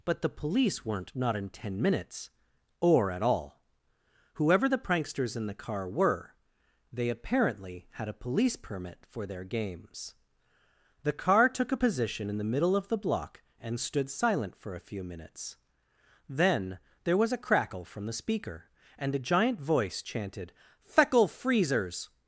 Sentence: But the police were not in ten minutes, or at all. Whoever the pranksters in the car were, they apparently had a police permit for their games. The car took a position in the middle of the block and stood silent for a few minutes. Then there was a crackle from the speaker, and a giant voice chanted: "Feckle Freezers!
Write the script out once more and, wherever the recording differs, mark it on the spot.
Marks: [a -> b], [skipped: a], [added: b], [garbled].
But the police [were -> weren't] not in ten minutes, or at all. Whoever the pranksters in the car were, they apparently had a police permit for their games. The car took a position in the middle of the block and stood silent for a few minutes. Then there was a crackle from the speaker, and a giant voice chanted: "Feckle Freezers!